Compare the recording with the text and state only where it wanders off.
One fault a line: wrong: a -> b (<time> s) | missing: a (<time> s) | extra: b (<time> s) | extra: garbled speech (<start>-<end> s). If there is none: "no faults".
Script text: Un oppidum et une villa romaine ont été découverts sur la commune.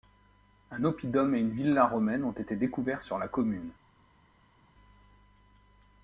no faults